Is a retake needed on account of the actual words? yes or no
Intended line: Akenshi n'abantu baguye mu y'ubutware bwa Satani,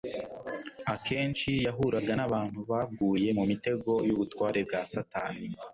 yes